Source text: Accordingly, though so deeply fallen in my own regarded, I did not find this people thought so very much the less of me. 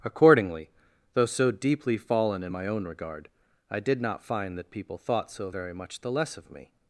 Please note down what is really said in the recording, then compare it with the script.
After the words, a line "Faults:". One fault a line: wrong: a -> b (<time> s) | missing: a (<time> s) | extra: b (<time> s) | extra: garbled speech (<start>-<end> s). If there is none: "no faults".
Accordingly, though so deeply fallen in my own regard, I did not find that people thought so very much the less of me.
Faults:
wrong: regarded -> regard (2.8 s)
wrong: this -> that (4.6 s)